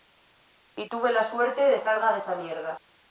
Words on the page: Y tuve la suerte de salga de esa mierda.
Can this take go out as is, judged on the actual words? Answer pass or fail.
pass